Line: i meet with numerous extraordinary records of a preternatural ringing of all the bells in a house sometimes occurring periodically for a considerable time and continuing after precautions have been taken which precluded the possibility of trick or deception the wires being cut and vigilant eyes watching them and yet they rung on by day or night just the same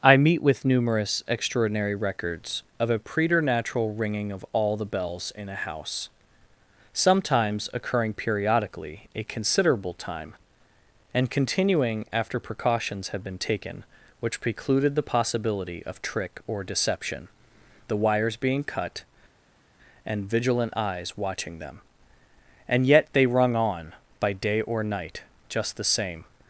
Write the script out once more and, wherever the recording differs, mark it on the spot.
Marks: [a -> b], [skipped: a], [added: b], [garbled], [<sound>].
i meet with numerous extraordinary records of a preternatural ringing of all the bells in a house sometimes occurring periodically [skipped: for] a considerable time and continuing after precautions have been taken which precluded the possibility of trick or deception the wires being cut and vigilant eyes watching them and yet they rung on by day or night just the same